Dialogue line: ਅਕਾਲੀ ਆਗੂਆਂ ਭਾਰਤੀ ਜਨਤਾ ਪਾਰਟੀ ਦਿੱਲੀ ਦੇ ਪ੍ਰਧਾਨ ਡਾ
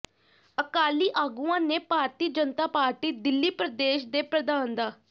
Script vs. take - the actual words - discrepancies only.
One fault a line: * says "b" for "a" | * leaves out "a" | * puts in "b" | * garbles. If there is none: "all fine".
* puts in "ਨੇ"
* puts in "ਪ੍ਰਦੇਸ਼"